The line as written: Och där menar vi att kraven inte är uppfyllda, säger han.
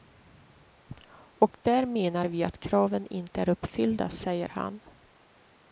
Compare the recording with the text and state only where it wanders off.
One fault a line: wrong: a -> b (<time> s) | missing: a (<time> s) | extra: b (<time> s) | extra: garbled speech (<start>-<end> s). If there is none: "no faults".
no faults